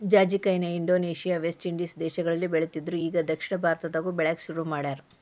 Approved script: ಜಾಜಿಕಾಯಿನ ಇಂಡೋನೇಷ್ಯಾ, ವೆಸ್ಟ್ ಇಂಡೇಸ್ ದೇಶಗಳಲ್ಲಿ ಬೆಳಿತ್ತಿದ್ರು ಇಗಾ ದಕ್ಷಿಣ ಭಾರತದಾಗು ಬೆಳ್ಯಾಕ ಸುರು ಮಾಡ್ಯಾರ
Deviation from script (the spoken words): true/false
false